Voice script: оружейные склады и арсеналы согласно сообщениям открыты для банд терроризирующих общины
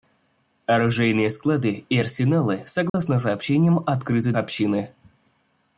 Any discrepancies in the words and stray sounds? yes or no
yes